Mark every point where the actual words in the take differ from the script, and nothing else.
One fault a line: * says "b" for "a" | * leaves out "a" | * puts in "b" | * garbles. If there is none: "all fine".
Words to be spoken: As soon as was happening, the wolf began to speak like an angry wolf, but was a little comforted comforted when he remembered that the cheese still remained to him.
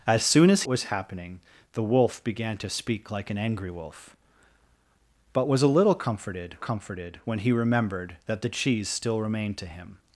all fine